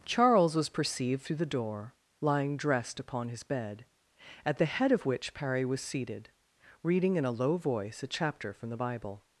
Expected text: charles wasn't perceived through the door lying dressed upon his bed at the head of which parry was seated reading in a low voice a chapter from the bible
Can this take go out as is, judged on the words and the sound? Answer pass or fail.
fail